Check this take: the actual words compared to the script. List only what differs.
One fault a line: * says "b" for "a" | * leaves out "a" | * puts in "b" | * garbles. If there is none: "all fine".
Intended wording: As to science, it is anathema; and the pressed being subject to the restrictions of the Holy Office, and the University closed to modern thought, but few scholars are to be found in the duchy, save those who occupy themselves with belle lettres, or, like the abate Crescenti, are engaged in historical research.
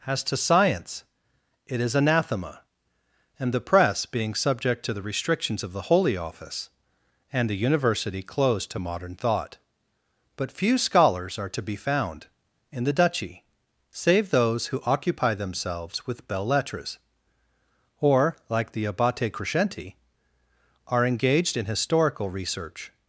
* says "press" for "pressed"
* says "belles" for "belle"